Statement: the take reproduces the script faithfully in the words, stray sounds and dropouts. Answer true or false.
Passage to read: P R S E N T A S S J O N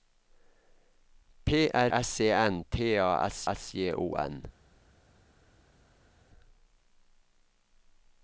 true